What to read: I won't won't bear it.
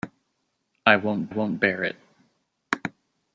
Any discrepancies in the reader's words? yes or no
no